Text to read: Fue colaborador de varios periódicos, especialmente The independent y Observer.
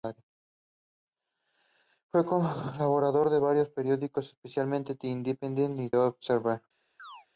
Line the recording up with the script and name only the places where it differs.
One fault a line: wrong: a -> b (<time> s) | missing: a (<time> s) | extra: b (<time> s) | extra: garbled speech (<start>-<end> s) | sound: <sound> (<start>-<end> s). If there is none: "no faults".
sound: chirp (7.0-7.3 s)